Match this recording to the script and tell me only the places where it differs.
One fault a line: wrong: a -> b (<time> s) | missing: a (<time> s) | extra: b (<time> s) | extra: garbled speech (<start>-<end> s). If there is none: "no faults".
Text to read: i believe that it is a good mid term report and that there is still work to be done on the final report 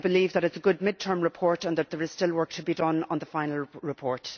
no faults